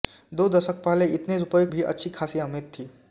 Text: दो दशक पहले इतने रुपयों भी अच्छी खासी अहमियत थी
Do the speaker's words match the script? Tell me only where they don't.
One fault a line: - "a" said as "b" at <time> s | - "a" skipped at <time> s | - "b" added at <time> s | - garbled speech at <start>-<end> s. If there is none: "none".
none